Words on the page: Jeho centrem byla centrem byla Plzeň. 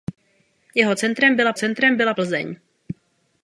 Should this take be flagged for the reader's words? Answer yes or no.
no